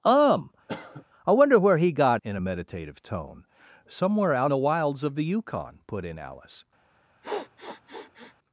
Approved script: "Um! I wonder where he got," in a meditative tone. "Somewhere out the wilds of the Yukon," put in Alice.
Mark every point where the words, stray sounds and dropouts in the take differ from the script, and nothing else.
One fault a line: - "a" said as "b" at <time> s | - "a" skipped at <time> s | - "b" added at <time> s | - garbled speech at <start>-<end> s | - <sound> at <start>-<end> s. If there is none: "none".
- cough at 0.7-1.0 s
- sniff at 7.2-8.4 s